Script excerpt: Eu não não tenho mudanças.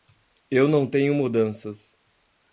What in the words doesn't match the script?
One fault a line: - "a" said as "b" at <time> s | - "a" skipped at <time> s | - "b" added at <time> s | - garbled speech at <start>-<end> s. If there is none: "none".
- "não" skipped at 0.9 s